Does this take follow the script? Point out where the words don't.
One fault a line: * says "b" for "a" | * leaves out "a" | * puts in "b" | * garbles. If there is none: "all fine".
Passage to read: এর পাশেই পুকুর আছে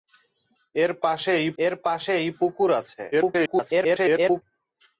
* puts in "এর পাশেই"
* garbles